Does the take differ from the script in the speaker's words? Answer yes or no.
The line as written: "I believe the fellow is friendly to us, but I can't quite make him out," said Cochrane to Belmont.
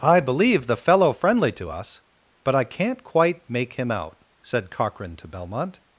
yes